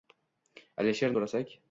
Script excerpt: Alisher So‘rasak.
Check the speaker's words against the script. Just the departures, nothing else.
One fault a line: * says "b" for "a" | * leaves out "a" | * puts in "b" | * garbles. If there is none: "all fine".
all fine